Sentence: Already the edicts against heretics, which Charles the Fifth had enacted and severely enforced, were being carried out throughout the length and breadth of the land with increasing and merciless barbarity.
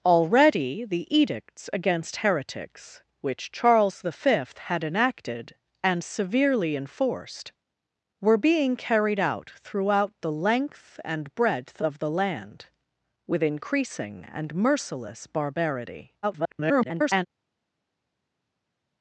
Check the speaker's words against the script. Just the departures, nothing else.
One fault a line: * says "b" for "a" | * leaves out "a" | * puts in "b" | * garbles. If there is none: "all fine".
* garbles